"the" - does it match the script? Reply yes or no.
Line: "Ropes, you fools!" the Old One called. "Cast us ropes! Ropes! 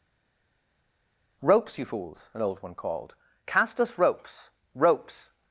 no